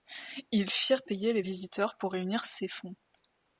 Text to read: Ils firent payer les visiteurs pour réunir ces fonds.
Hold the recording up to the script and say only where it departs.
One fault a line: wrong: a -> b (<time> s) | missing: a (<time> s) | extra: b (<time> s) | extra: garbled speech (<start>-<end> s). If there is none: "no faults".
no faults